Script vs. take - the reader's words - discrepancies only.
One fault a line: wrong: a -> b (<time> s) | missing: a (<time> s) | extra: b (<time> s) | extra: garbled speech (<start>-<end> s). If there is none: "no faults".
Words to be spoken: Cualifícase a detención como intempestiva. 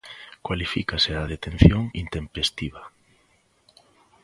missing: como (1.9 s)